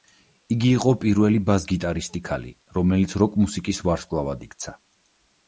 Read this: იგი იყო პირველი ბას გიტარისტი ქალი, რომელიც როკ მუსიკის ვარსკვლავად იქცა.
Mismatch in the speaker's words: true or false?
false